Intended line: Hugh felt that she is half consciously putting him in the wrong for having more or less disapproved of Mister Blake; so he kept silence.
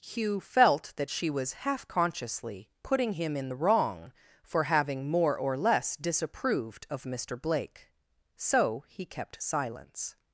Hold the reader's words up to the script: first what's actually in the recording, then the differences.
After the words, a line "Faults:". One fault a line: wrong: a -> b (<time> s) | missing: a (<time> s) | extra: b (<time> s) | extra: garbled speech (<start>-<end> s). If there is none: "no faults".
Hugh felt that she was half consciously putting him in the wrong for having more or less disapproved of Mister Blake; so he kept silence.
Faults:
wrong: is -> was (1.3 s)